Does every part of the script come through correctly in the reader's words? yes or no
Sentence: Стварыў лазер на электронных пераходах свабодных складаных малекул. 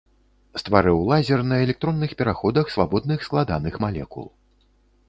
yes